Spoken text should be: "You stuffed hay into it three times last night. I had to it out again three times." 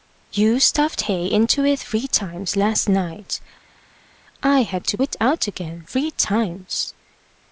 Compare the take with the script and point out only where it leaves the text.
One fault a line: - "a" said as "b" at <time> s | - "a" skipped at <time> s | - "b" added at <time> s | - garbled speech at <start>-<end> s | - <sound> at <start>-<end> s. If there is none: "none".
none